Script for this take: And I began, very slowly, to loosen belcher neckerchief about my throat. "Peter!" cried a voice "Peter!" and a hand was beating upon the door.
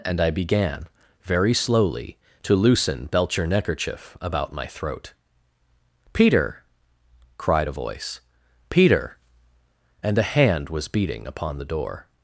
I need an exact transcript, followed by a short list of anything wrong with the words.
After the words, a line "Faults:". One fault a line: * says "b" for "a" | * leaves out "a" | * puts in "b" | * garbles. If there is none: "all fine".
And I began, very slowly, to loosen belcher neckerchief about my throat. "Peter!" cried a voice "Peter!" and a hand was beating upon the door.
Faults:
all fine